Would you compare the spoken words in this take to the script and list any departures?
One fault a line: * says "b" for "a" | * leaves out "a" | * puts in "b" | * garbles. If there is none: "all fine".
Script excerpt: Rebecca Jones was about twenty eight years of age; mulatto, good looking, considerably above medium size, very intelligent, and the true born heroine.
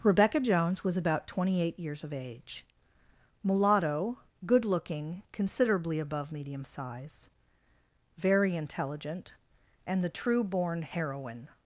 all fine